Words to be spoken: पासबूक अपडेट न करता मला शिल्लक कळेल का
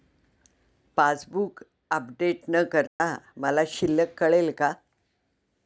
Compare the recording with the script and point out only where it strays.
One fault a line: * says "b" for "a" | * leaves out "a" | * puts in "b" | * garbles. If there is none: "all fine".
all fine